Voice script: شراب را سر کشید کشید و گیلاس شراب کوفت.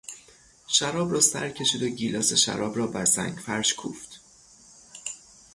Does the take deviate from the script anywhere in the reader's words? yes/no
yes